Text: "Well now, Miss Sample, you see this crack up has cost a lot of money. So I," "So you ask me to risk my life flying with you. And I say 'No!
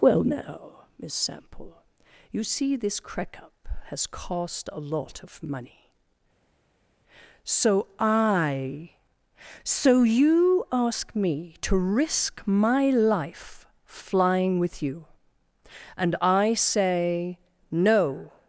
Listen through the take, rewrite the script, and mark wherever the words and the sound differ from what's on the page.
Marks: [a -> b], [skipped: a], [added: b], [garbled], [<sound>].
"Well now, Miss Sample, you see this crack up has cost a lot of money. So I," "So you ask me to risk my life flying with you. And I say 'No!